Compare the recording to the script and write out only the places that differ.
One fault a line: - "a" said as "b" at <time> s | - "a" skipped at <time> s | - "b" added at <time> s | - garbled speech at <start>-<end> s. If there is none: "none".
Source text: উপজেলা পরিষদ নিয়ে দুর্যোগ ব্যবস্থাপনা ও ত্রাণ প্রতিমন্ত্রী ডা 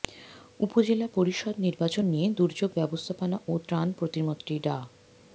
- "নির্বাচন" added at 1.6 s